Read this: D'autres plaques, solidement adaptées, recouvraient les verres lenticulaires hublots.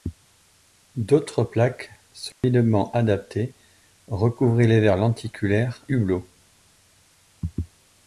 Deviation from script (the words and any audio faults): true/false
true